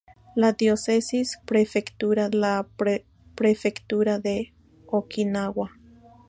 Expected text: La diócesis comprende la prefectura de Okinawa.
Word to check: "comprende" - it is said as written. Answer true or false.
false